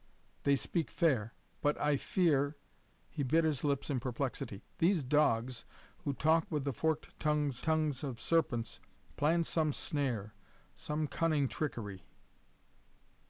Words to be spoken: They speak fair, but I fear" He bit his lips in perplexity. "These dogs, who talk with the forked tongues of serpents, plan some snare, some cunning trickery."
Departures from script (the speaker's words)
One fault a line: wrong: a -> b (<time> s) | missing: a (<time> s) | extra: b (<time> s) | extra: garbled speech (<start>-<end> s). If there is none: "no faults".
extra: tongues (7.6 s)